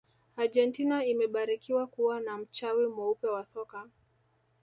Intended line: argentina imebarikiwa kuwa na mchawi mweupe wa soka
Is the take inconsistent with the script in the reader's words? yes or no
no